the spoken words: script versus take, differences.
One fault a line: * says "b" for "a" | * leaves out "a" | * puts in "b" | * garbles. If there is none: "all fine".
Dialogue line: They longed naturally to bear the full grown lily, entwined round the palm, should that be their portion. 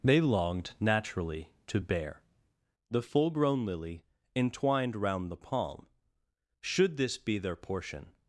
* says "this" for "that"